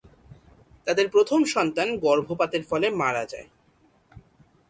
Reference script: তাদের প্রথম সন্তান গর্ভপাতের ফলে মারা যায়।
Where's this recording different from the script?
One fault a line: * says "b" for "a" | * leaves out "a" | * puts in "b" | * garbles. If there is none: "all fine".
all fine